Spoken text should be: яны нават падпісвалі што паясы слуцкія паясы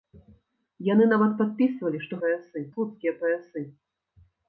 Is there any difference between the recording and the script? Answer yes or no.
no